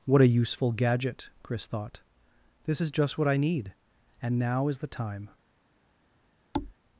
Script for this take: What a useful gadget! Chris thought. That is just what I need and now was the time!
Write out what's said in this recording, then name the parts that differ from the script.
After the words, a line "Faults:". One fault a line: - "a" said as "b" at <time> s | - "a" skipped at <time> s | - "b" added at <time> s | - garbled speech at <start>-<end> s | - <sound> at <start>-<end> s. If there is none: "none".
What a useful gadget! Chris thought. This is just what I need and now is the time!
Faults:
- "That" said as "This" at 2.6 s
- "was" said as "is" at 4.7 s
- thud at 6.5-6.7 s